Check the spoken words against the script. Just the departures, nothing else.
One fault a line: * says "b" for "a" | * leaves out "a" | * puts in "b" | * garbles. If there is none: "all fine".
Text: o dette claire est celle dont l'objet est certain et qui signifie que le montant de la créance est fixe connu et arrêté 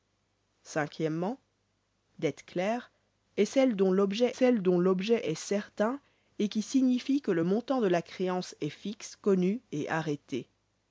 * puts in "celle dont l'objet"